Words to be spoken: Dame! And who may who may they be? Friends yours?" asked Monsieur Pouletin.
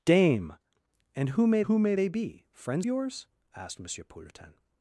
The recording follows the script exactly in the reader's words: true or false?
true